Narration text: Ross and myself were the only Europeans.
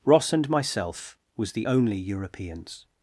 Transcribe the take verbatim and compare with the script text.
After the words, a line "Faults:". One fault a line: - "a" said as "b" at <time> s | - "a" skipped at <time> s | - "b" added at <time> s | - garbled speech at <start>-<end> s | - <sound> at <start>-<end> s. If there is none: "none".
Ross and myself was the only Europeans.
Faults:
- "were" said as "was" at 1.4 s